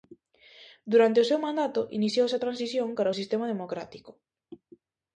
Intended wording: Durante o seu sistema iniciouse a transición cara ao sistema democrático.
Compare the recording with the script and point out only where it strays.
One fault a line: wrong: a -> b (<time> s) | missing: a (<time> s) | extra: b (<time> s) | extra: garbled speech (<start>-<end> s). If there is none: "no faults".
wrong: sistema -> mandato (1.4 s)